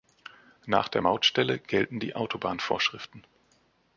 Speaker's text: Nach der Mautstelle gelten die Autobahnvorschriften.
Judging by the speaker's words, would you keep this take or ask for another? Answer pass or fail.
pass